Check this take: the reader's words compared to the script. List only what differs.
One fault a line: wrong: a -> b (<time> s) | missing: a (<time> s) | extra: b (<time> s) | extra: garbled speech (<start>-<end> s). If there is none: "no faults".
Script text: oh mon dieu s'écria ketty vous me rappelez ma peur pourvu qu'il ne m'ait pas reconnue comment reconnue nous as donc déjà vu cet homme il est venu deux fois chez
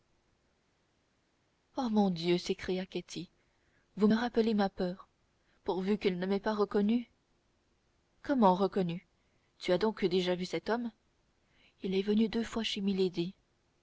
wrong: nous -> tu (9.6 s)